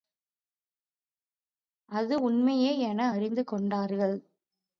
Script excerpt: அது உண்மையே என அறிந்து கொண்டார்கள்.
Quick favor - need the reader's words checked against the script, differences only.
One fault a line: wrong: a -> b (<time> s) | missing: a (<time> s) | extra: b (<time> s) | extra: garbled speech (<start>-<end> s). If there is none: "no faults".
no faults